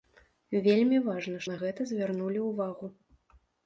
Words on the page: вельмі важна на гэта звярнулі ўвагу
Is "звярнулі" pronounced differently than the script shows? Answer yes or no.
no